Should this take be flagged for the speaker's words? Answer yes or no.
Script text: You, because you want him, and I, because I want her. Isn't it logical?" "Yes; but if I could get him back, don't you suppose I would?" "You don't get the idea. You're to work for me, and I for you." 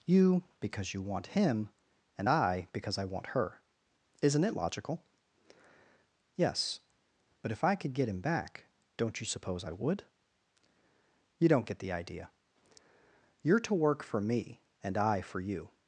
no